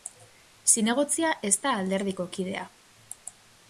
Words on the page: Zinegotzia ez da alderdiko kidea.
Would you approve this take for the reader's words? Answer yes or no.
yes